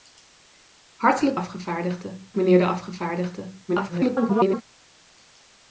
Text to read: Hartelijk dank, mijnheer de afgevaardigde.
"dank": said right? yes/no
no